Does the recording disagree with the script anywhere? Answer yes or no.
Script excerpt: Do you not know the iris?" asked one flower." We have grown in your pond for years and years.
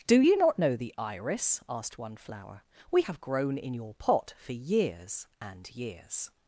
yes